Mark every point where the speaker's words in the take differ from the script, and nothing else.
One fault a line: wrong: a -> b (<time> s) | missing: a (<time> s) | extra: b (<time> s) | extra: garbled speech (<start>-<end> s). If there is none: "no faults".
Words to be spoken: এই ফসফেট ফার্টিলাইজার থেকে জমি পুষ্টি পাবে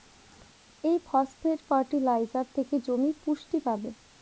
no faults